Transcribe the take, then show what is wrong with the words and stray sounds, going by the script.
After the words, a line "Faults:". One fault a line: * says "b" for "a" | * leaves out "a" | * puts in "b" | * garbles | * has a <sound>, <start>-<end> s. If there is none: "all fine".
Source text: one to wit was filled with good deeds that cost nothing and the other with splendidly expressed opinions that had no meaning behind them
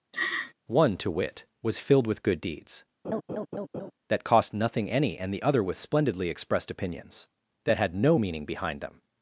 one to wit was filled with good deeds that cost nothing any and the other with splendidly expressed opinions that had no meaning behind them
Faults:
* has a laugh, 0.1-0.5 s
* has a laugh, 3.0-3.9 s
* puts in "any"